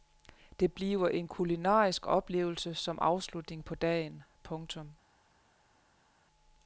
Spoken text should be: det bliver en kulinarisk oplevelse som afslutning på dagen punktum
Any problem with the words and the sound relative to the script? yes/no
no